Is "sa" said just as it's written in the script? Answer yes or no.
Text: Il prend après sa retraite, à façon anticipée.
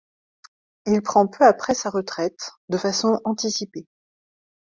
yes